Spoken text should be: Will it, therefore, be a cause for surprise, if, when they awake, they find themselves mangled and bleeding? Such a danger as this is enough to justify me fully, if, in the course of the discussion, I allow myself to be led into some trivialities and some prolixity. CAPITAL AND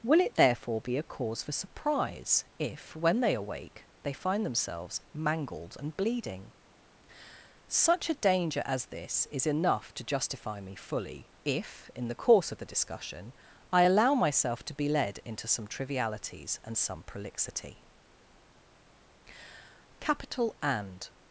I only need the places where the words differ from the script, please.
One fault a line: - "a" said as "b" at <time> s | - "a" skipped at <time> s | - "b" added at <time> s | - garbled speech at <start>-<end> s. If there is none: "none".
none